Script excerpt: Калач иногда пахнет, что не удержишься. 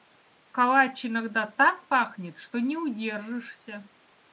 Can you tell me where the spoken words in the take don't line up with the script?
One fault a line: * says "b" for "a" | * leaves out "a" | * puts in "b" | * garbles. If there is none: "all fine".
* puts in "так"